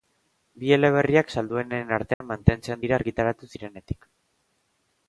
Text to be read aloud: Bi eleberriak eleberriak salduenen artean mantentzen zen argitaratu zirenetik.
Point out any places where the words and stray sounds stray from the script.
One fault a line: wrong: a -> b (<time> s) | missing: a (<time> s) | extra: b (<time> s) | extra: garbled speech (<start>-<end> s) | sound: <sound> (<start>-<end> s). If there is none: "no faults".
missing: eleberriak (1.3 s)
sound: dropout (2.1-2.2 s)
wrong: zen -> dira (2.9 s)